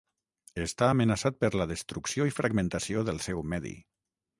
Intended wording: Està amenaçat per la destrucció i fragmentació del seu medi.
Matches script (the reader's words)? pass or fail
pass